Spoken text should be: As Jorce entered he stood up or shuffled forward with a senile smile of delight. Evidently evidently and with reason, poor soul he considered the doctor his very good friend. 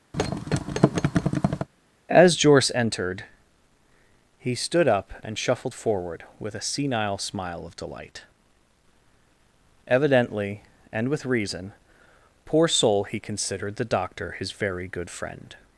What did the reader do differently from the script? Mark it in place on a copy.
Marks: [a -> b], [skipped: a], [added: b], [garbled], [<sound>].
[thud] As Jorce entered he stood up [or -> and] shuffled forward with a senile smile of delight. Evidently [skipped: evidently] and with reason, poor soul he considered the doctor his very good friend.